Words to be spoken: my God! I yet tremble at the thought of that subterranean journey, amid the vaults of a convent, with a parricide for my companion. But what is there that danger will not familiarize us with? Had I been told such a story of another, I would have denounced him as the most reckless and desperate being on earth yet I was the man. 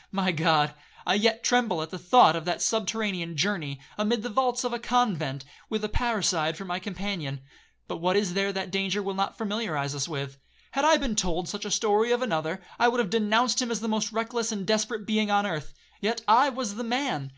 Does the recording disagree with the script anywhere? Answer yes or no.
no